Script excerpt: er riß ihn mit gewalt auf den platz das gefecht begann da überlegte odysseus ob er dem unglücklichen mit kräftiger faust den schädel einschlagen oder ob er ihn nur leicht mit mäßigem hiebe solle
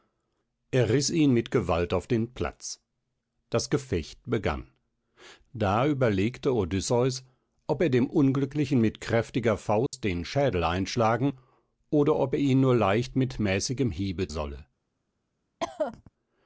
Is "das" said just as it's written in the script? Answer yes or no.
yes